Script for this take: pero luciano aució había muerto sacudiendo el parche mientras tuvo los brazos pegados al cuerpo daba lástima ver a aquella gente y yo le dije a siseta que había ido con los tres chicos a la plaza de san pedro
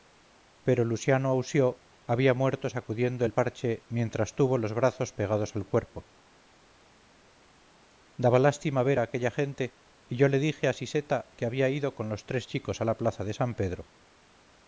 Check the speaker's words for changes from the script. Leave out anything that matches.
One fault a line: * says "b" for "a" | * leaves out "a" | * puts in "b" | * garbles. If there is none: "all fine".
all fine